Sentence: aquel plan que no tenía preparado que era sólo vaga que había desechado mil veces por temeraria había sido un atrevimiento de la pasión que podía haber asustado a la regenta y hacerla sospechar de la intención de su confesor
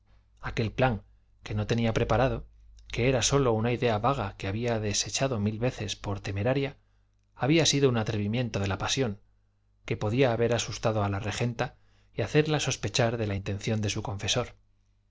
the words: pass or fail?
fail